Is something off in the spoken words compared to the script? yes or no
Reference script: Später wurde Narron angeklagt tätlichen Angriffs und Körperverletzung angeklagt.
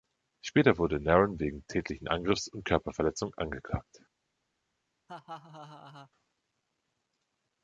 yes